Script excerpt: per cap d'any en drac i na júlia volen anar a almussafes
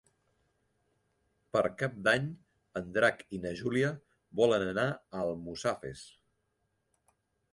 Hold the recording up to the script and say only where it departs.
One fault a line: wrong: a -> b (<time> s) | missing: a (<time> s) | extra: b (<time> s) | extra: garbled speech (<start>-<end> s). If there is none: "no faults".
no faults